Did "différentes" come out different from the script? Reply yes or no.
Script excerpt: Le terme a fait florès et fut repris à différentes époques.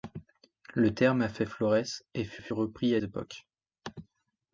yes